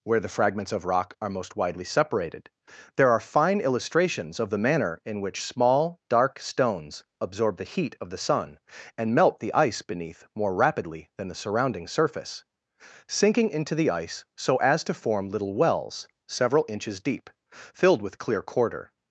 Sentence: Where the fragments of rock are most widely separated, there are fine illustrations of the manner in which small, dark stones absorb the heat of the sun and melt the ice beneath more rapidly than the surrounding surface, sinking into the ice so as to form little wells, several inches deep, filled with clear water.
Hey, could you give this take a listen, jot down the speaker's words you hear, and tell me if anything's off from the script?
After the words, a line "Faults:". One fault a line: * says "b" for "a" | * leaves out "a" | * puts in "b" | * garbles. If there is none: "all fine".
Where the fragments of rock are most widely separated, there are fine illustrations of the manner in which small, dark stones absorb the heat of the sun and melt the ice beneath more rapidly than the surrounding surface, sinking into the ice so as to form little wells, several inches deep, filled with clear quarter.
Faults:
* says "quarter" for "water"